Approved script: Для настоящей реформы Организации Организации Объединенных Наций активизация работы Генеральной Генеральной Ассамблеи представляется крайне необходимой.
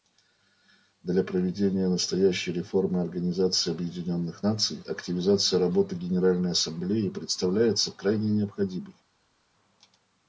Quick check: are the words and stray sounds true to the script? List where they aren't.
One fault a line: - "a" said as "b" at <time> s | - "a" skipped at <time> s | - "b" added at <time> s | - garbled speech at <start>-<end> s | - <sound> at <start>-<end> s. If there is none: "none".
- "проведения" added at 1.2 s
- "Организации" skipped at 3.7 s
- "Генеральной" skipped at 6.5 s